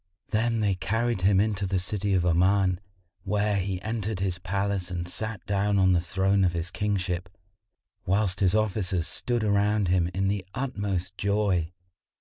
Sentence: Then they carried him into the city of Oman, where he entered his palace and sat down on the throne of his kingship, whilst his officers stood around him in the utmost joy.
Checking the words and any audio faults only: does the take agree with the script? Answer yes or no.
yes